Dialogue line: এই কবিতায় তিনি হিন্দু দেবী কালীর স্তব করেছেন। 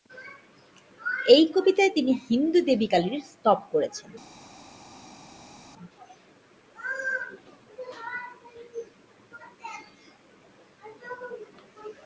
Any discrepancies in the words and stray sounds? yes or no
no